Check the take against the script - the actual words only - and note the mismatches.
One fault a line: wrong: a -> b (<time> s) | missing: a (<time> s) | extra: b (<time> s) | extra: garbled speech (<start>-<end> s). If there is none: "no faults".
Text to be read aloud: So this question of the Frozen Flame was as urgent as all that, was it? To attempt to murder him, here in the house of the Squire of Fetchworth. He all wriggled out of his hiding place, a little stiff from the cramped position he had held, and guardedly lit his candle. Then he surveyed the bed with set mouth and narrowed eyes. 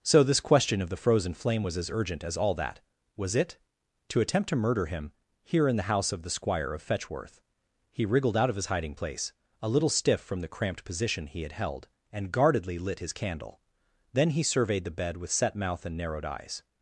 missing: all (8.1 s)